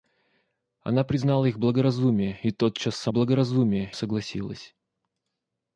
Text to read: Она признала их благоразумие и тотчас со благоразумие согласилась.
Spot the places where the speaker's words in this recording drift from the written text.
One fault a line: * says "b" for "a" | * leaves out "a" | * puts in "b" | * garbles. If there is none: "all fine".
all fine